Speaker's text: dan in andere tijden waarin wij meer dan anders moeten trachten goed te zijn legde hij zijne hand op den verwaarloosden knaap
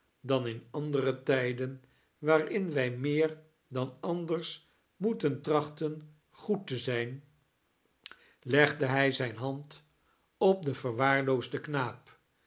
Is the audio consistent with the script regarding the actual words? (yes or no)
yes